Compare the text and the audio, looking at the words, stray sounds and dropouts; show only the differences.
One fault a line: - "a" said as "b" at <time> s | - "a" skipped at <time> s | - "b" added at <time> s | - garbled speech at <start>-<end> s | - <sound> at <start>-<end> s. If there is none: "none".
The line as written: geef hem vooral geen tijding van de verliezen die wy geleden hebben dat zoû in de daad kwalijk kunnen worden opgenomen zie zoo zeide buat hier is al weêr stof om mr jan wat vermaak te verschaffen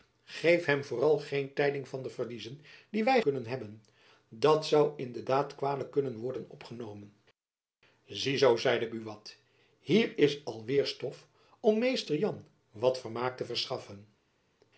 - "geleden" said as "kunnen" at 3.2 s